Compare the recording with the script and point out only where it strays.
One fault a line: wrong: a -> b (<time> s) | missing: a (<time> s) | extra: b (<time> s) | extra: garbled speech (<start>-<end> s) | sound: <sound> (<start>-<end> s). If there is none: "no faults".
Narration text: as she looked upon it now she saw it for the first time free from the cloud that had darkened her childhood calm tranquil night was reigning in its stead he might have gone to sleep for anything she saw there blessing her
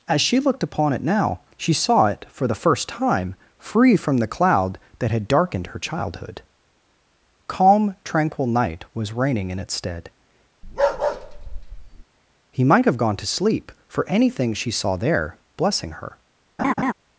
sound: bark (10.6-12.0 s)
sound: laugh (16.6-16.9 s)